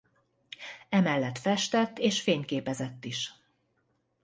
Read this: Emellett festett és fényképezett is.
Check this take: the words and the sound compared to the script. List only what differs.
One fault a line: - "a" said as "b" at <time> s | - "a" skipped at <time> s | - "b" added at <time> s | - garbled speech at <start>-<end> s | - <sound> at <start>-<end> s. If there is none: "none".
none